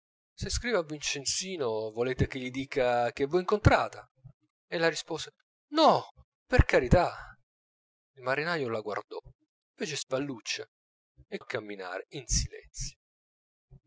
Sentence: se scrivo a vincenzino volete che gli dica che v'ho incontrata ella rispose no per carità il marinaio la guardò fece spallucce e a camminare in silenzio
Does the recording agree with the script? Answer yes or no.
yes